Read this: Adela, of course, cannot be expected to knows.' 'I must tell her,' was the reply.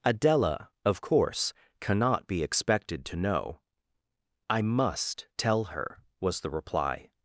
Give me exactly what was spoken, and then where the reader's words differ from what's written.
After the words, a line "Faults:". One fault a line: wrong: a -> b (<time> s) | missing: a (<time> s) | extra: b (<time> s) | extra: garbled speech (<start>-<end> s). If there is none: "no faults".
Adela, of course, cannot be expected to know.' 'I must tell her,' was the reply.
Faults:
wrong: knows -> know (3.1 s)